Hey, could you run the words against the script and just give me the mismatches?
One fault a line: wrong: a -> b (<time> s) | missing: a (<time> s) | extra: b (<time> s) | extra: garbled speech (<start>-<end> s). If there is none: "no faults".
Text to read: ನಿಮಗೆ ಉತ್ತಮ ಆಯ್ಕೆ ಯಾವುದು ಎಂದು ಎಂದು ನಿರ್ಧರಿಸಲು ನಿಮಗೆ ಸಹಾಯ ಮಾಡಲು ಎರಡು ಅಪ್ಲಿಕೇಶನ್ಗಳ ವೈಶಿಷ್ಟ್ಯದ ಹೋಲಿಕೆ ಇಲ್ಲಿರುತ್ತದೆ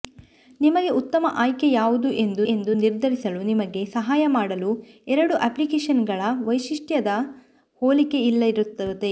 no faults